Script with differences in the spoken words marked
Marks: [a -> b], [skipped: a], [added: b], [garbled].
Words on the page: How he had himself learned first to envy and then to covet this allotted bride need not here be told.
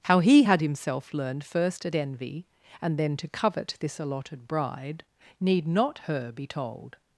How he had himself learned first [to -> at] envy and then to covet this allotted bride need not [here -> her] be told.